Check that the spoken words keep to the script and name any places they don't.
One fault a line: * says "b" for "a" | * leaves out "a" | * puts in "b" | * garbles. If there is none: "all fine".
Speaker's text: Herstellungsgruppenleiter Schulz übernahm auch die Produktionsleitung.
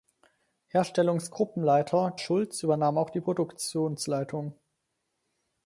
all fine